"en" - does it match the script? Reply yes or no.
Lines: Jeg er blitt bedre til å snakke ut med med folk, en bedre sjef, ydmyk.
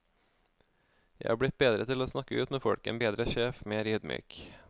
yes